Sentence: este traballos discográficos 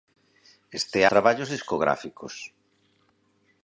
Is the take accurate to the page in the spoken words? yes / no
yes